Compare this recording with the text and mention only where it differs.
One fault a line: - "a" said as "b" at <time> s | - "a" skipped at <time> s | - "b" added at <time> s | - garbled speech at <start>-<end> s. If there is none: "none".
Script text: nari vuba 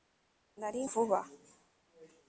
none